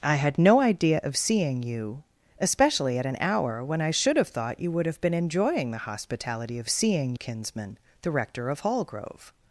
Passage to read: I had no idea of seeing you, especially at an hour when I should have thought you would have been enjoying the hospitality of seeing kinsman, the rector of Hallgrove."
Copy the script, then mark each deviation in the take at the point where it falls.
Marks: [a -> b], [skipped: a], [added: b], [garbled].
I had no idea of seeing you, especially at an hour when I should have thought you would have been enjoying the hospitality of seeing kinsman, the rector of Hallgrove."